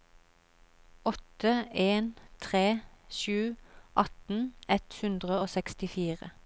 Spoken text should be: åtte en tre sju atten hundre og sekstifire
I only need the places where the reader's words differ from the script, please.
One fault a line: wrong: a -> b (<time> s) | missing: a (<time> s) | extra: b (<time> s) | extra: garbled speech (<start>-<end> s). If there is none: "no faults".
extra: ett (4.7 s)